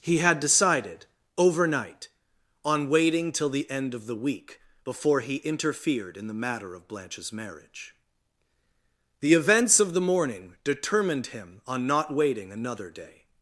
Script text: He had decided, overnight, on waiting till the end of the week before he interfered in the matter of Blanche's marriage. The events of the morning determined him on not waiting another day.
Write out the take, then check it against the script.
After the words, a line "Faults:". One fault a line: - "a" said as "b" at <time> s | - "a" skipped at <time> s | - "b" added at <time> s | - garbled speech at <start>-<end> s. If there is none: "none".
He had decided, overnight, on waiting till the end of the week before he interfered in the matter of Blanche's marriage. The events of the morning determined him on not waiting another day.
Faults:
none